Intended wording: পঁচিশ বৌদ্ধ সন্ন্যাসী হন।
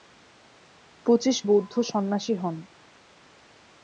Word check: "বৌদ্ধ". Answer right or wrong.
right